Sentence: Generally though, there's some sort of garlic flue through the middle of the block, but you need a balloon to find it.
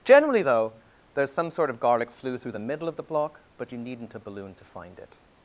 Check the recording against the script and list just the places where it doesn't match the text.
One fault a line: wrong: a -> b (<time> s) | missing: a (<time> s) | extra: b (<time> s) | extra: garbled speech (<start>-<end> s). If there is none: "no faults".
wrong: need -> needn't (3.8 s)